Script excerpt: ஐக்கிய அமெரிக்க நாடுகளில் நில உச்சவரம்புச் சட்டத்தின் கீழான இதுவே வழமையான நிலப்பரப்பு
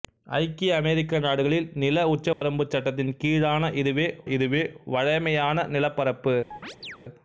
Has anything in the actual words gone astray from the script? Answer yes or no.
yes